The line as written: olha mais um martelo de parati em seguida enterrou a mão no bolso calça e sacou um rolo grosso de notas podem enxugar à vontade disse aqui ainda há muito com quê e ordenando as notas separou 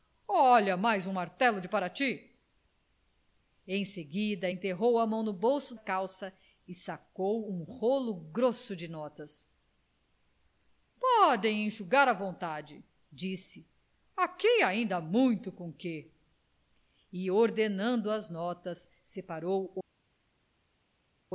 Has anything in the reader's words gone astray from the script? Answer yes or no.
no